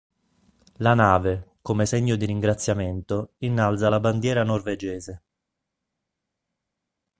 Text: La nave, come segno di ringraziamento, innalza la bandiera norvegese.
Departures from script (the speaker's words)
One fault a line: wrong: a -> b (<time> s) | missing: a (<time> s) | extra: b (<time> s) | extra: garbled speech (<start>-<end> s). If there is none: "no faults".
no faults